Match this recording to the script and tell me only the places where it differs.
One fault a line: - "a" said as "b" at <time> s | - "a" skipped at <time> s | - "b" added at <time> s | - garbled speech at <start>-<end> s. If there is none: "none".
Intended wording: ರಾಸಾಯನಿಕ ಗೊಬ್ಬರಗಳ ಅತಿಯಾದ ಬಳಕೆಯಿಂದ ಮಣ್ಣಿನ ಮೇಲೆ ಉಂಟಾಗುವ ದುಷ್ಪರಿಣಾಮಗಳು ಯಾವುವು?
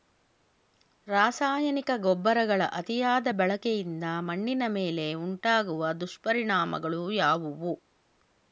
none